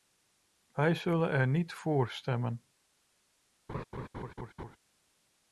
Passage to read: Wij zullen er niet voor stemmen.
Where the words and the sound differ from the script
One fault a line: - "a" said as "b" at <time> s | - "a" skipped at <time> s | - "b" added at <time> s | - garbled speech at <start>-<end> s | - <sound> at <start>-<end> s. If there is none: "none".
- laugh at 3.7-4.8 s